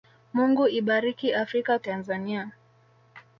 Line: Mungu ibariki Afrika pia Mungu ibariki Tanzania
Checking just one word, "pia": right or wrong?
wrong